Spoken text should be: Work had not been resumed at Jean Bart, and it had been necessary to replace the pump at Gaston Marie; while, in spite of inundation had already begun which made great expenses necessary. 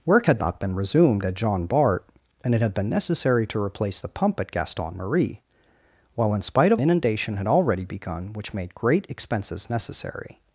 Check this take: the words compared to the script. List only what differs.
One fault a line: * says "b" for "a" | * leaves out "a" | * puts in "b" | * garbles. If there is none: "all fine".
all fine